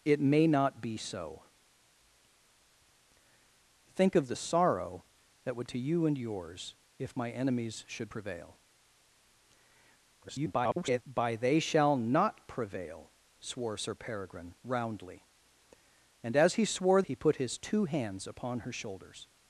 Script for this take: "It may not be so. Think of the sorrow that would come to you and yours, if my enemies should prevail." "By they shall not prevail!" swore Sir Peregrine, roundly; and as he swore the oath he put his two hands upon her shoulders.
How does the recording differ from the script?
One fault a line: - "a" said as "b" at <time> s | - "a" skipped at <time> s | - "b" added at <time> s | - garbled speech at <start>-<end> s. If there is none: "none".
- "come" skipped at 5.7 s
- garbled speech at 10.2-11.0 s
- "the oath" skipped at 17.0 s